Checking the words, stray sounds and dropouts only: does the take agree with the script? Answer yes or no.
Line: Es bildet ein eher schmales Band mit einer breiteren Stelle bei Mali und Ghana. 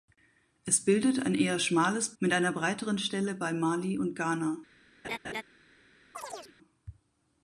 no